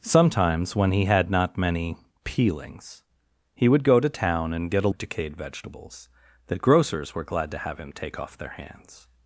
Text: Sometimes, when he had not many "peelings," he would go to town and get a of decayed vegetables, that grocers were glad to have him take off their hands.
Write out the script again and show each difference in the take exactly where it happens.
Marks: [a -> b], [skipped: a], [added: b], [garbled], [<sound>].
Sometimes, when he had not many "peelings," he would go to town and get a of decayed vegetables, that grocers were glad to have him take off their hands.